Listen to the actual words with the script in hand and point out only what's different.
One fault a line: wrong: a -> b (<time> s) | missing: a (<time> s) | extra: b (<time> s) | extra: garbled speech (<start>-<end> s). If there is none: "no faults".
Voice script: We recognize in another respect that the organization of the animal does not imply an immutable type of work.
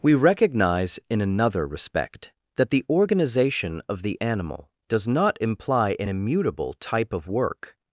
no faults